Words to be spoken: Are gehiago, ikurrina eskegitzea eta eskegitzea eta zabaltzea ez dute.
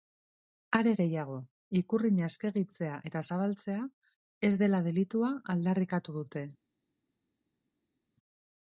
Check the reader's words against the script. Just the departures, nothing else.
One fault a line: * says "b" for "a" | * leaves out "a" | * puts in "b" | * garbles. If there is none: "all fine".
* says "zabaltzea ez dela delitua aldarrikatu" for "eskegitzea eta zabaltzea ez"